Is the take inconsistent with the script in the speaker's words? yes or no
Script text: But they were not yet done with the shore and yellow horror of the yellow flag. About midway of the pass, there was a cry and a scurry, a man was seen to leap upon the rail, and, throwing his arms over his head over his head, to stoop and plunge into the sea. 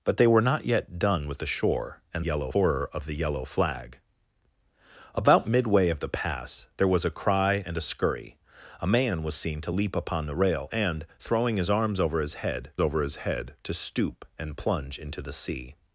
no